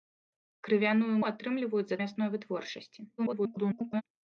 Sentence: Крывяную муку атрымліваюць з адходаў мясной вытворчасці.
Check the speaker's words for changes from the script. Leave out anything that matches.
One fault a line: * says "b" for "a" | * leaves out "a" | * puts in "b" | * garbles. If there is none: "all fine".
* leaves out "муку"
* leaves out "адходаў"
* garbles